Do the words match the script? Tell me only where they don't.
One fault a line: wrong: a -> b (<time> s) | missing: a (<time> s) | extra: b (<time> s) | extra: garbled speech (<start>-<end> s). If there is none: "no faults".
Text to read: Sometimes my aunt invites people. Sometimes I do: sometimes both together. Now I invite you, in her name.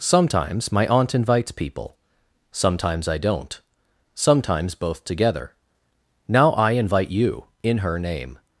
wrong: do -> don't (3.2 s)